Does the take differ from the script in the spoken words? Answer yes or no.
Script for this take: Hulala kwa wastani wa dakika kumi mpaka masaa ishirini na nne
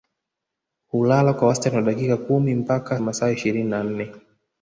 no